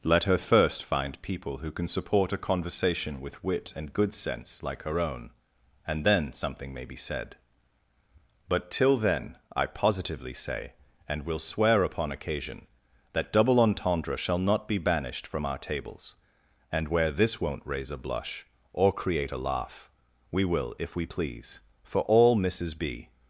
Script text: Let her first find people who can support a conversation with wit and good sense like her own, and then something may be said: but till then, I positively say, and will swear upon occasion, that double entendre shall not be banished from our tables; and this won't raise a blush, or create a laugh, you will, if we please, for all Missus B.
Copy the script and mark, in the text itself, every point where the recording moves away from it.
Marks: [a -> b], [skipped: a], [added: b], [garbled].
Let her first find people who can support a conversation with wit and good sense like her own, and then something may be said: but till then, I positively say, and will swear upon occasion, that double entendre shall not be banished from our tables; and [added: where] this won't raise a blush, or create a laugh, [you -> we] will, if we please, for all Missus B.